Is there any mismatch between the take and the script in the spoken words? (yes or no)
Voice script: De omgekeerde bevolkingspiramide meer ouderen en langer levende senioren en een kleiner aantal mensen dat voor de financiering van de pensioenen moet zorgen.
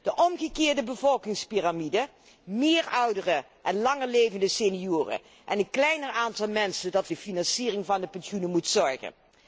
yes